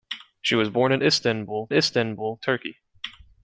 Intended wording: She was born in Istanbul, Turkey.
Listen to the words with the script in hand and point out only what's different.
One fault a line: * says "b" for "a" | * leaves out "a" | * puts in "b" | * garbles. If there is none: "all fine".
* puts in "Istanbul"